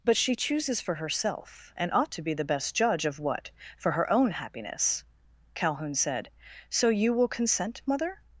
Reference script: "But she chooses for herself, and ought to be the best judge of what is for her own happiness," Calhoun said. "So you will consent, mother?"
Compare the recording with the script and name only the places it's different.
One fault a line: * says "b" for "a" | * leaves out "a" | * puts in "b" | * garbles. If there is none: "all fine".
* leaves out "is"